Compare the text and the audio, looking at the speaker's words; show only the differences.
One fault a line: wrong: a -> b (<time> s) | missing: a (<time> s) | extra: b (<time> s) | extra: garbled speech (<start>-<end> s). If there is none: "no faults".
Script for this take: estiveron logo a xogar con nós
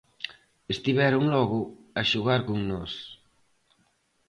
no faults